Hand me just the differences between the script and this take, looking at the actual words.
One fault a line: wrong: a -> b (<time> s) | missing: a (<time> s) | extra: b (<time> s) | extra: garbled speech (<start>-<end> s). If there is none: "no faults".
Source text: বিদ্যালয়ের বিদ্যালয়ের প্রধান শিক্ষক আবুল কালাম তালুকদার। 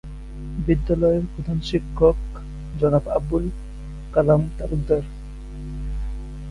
missing: বিদ্যালয়ের (1.2 s)
extra: জনাব (2.7 s)